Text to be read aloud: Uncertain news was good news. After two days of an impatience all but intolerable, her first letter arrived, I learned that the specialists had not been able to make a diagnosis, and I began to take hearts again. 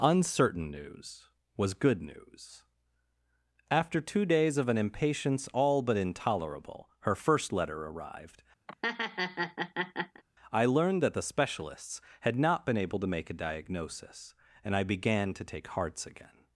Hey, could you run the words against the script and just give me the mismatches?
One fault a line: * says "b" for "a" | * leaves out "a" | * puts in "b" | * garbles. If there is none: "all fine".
all fine